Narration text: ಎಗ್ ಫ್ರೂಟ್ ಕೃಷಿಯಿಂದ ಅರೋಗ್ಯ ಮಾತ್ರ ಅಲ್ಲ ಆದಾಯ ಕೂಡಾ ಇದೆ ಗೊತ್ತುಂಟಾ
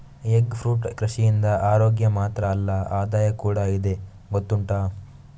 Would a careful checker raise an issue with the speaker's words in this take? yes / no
no